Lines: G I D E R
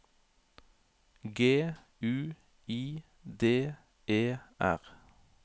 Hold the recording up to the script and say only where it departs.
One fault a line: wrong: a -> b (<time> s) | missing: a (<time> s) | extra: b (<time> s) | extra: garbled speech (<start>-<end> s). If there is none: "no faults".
extra: U (2.0 s)